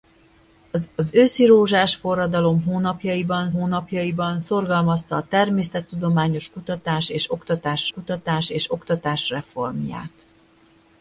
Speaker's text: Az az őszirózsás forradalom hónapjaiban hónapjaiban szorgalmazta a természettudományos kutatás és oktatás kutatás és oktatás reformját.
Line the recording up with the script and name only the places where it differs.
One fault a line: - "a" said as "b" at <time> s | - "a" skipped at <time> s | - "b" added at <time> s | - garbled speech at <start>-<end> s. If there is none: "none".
none